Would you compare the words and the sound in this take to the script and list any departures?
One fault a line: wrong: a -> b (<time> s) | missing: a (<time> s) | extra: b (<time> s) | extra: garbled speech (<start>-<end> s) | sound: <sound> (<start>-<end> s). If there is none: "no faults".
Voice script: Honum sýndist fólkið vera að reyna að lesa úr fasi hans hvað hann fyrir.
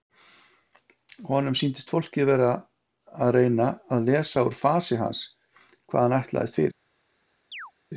extra: ætlaðist (6.2 s)
sound: chirp (7.5-7.7 s)